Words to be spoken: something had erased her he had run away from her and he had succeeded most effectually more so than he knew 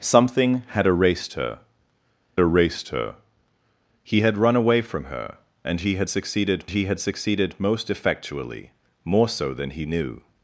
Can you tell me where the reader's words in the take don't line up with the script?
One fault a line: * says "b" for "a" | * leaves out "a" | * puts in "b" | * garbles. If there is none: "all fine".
* puts in "erased her"
* puts in "he had succeeded"